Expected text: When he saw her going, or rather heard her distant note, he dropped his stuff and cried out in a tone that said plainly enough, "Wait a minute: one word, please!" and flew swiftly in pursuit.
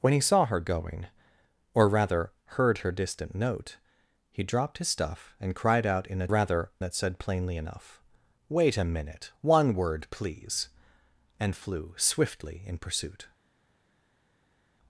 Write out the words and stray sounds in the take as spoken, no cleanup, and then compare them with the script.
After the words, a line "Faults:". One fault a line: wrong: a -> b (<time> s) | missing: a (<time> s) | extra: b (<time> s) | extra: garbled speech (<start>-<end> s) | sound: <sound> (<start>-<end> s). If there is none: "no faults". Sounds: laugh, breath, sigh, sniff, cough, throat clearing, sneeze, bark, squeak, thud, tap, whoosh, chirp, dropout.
When he saw her going, or rather heard her distant note, he dropped his stuff and cried out in a rather that said plainly enough, "Wait a minute: one word, please!" and flew swiftly in pursuit.
Faults:
wrong: tone -> rather (6.3 s)